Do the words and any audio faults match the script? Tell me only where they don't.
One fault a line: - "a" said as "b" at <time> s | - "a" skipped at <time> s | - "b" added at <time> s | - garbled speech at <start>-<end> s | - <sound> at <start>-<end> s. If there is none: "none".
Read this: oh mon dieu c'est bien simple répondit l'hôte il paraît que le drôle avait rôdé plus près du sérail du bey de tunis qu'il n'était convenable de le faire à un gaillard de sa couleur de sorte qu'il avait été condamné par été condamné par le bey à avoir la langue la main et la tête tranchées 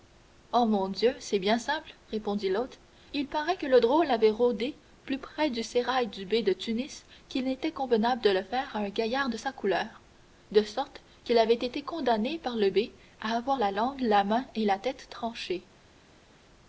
- "été condamné par" skipped at 12.6 s